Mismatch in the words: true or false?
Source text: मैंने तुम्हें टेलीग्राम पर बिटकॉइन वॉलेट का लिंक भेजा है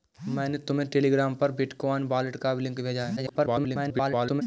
true